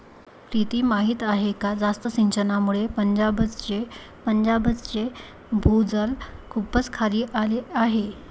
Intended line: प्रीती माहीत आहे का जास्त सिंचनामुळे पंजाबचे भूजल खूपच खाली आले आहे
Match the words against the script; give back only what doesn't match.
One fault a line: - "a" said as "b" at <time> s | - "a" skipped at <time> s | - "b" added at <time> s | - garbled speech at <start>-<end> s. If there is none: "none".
- "पंजाबचे" added at 4.3 s